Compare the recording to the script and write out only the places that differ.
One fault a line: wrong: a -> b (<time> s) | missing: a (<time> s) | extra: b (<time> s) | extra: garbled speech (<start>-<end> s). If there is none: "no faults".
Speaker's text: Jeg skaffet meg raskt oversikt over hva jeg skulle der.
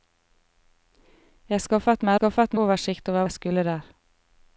wrong: raskt -> skaffet (2.2 s)
missing: hva (3.3 s)